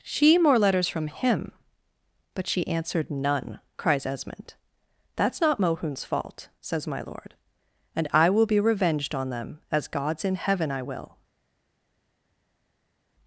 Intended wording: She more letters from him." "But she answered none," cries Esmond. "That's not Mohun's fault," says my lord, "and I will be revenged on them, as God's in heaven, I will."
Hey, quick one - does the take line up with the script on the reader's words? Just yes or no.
yes